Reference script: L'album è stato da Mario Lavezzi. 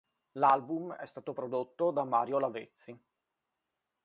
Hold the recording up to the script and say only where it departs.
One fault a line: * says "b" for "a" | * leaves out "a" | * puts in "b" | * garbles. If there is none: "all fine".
* puts in "prodotto"